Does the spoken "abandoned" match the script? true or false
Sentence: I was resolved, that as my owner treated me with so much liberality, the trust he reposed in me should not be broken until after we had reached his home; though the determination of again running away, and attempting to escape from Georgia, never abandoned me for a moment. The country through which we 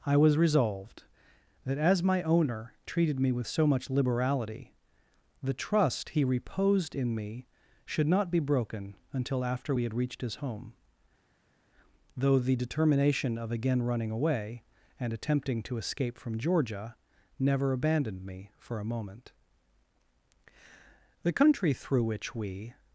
true